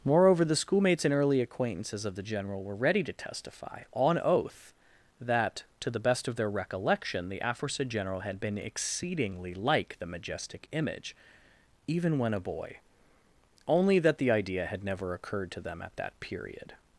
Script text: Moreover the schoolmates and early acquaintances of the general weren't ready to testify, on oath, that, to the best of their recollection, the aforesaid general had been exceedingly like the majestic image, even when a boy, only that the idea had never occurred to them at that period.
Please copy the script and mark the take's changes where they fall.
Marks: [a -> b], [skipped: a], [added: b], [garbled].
Moreover the schoolmates and early acquaintances of the general [weren't -> were] ready to testify, on oath, that, to the best of their recollection, the aforesaid general had been exceedingly like the majestic image, even when a boy, only that the idea had never occurred to them at that period.